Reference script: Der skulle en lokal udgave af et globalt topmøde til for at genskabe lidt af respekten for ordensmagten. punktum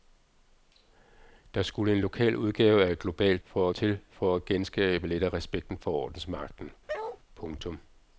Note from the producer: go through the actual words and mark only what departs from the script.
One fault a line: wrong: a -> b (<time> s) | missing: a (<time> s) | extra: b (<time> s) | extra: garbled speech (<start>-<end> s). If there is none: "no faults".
wrong: topmøde -> for (3.4 s)